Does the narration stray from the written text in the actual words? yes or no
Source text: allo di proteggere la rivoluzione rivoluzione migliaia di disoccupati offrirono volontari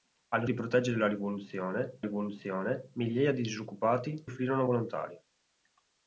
no